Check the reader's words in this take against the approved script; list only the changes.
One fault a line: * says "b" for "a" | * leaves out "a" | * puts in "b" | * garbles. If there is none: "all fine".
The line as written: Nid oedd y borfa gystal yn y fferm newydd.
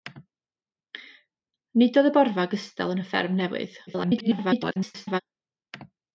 * garbles